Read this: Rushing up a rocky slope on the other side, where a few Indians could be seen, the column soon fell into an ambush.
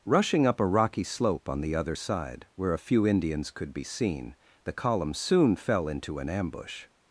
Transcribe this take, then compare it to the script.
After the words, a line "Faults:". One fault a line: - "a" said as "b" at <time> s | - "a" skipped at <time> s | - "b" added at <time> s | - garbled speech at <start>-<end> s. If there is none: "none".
Rushing up a rocky slope on the other side, where a few Indians could be seen, the column soon fell into an ambush.
Faults:
none